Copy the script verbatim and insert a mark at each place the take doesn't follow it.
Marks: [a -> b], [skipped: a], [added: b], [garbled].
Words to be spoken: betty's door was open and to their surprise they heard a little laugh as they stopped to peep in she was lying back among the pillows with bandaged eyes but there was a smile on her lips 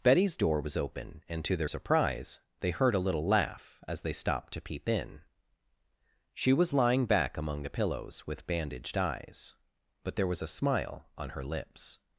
betty's door was open and to their surprise they heard a little laugh as they stopped to peep in she was lying back among the pillows with bandaged eyes but there was a smile on her lips